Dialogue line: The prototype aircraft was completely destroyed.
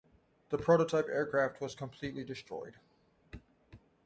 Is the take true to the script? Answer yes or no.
yes